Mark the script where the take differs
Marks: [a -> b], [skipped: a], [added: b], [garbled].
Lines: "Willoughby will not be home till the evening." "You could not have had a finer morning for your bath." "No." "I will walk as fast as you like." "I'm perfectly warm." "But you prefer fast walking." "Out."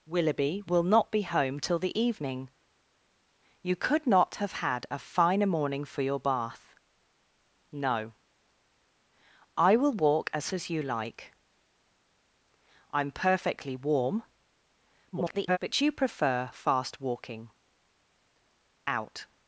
"Willoughby will not be home till the evening." "You could not have had a finer morning for your bath." "No." "I will walk as [skipped: fast] as you like." "I'm perfectly warm." [garbled] "But you prefer fast walking." "Out."